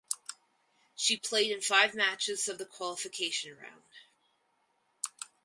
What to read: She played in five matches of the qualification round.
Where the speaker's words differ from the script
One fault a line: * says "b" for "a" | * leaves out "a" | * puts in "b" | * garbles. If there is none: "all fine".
all fine